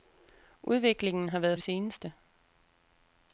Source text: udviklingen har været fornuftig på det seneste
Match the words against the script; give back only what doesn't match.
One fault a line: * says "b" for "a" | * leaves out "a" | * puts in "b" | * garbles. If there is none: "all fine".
* leaves out "fornuftig på"